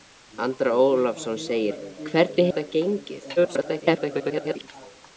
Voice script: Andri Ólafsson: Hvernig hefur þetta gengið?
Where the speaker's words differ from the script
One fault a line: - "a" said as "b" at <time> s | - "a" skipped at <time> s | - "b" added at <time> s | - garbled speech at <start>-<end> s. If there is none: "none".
- "hefur" skipped at 2.5 s
- garbled speech at 3.4-4.7 s